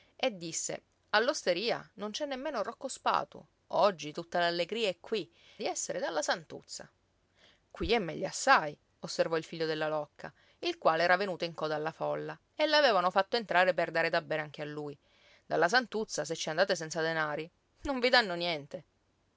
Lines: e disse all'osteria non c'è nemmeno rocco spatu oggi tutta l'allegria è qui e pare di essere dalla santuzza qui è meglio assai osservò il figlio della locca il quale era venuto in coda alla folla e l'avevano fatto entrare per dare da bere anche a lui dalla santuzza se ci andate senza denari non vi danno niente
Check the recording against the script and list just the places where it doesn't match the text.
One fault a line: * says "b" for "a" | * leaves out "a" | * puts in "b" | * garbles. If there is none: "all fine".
* leaves out "e pare"